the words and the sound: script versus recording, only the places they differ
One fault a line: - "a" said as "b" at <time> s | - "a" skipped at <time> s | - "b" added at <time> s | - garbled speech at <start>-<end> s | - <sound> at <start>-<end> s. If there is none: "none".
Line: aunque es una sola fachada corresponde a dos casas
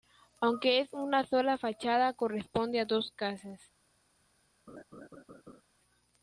- laugh at 4.7-5.6 s